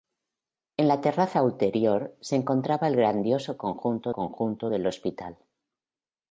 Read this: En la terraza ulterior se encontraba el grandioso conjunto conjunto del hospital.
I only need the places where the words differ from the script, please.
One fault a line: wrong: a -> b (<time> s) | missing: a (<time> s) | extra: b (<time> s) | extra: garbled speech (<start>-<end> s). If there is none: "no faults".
no faults